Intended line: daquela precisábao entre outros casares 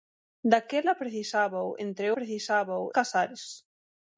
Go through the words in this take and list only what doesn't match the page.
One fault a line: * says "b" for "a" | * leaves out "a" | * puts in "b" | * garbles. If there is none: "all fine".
* says "precisábao" for "outros"